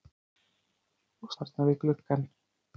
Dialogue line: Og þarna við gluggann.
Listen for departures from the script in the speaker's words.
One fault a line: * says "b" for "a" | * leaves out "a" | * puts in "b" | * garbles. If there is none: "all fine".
all fine